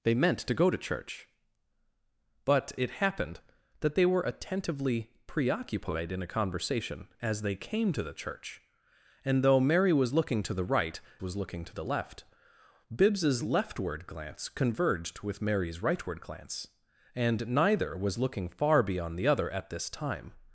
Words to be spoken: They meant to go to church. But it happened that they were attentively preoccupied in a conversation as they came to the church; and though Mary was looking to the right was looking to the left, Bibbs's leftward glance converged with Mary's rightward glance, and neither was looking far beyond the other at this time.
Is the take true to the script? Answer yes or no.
yes